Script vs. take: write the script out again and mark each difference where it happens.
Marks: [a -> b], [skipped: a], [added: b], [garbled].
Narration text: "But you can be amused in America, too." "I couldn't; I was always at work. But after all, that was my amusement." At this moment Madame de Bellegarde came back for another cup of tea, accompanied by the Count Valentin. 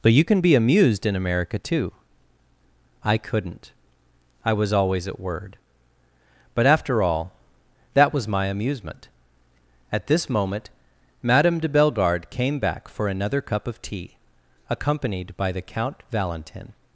"But you can be amused in America, too." "I couldn't; I was always at [work. -> word] But after all, that was my amusement." At this moment Madame de Bellegarde came back for another cup of tea, accompanied by the Count Valentin.